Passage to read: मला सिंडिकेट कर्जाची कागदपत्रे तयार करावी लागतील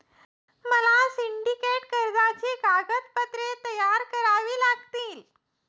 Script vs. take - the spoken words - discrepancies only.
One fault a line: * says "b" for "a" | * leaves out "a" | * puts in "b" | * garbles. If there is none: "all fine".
all fine